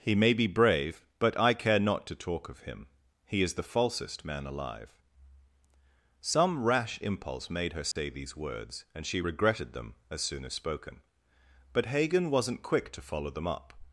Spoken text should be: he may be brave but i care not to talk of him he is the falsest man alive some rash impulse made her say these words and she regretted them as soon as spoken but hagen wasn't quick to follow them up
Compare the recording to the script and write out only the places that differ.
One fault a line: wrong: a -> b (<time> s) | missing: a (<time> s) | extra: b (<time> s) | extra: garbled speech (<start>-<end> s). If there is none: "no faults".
no faults